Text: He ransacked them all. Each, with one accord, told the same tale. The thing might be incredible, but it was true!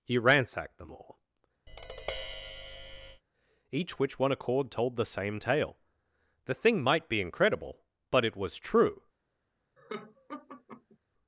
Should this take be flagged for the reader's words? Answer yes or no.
yes